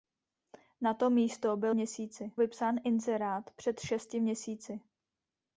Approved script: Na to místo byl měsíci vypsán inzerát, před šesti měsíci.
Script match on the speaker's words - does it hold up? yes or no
yes